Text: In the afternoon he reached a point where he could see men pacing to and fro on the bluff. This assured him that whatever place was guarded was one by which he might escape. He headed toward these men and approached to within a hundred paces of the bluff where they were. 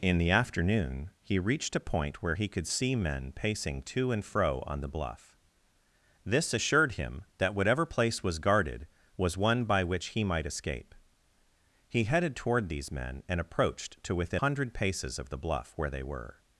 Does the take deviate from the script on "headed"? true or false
false